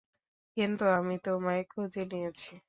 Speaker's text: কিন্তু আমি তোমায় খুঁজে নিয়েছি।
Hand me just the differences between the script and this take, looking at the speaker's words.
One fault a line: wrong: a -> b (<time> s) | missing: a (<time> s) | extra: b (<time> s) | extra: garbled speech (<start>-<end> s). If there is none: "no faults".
no faults